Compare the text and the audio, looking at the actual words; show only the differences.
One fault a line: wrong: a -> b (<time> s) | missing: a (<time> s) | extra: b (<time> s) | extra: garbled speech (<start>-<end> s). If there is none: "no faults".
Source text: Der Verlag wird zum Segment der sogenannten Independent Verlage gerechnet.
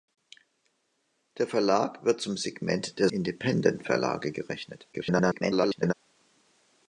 missing: sogenannten (3.1 s)
extra: garbled speech (4.9-5.9 s)